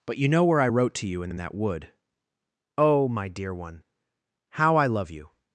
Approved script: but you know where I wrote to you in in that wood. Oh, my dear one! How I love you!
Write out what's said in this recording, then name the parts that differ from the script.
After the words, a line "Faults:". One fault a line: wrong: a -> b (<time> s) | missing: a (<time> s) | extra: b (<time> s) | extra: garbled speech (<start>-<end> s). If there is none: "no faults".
but you know where I wrote to you in in that wood. Oh, my dear one! How I love you!
Faults:
no faults